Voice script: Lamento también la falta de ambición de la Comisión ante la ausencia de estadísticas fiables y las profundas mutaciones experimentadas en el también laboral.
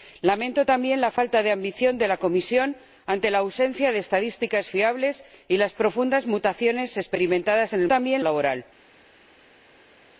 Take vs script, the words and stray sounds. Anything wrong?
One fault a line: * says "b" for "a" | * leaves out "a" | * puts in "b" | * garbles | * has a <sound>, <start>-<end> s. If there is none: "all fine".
all fine